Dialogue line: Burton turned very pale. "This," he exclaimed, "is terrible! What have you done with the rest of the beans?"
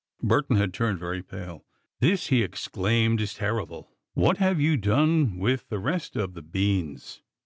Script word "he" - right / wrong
right